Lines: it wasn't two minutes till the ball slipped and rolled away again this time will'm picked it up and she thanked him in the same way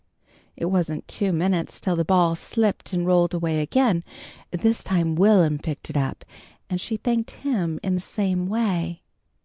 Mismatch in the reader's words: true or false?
false